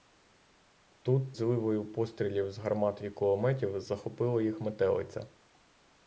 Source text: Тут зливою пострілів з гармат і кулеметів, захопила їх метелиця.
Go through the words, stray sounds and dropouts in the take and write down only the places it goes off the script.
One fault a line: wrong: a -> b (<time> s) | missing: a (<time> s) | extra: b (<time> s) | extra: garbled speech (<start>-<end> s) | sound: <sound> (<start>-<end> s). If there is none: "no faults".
no faults